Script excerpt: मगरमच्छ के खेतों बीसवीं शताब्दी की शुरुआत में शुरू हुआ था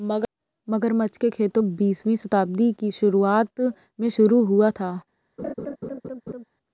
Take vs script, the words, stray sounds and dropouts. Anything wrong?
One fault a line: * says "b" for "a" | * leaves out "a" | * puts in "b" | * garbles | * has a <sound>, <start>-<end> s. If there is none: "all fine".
* has a laugh, 5.4-6.4 s